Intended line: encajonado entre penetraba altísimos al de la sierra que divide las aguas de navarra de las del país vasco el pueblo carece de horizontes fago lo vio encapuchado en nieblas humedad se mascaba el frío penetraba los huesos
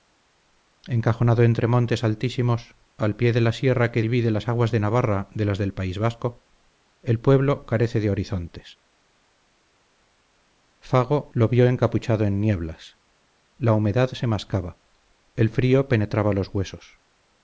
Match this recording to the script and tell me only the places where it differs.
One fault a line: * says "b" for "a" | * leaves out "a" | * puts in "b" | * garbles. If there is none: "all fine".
* says "montes" for "penetraba"
* puts in "pie"
* puts in "la"